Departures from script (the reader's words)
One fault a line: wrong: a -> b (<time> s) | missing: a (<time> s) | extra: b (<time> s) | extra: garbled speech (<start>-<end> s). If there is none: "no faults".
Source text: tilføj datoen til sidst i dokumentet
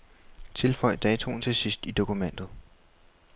no faults